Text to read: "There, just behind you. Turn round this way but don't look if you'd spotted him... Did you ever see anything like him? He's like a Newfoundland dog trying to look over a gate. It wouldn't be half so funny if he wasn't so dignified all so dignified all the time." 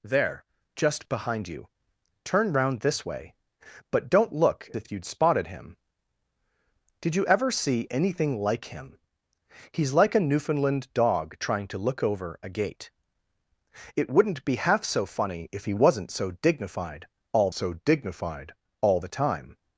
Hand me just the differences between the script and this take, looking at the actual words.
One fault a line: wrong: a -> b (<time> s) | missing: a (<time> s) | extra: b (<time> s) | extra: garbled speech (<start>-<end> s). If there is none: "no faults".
no faults